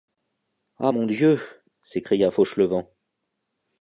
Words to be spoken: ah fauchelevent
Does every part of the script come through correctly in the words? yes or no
no